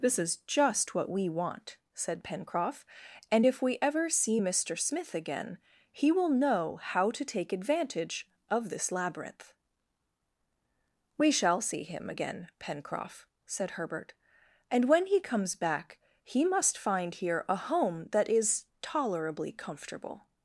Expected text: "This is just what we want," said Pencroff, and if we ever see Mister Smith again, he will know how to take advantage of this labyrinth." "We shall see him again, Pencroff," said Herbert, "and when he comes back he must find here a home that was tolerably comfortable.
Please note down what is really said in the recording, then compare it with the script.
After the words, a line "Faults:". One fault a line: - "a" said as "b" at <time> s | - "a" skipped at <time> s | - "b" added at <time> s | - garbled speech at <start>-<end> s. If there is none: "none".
"This is just what we want," said Pencroff, and if we ever see Mister Smith again, he will know how to take advantage of this labyrinth." "We shall see him again, Pencroff," said Herbert, "and when he comes back he must find here a home that is tolerably comfortable.
Faults:
- "was" said as "is" at 18.3 s